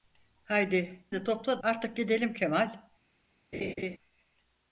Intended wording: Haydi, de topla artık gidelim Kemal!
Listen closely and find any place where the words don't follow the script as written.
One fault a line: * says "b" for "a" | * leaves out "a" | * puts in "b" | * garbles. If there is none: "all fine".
all fine